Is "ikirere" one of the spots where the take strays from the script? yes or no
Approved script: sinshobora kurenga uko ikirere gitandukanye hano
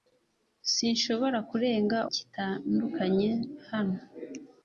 yes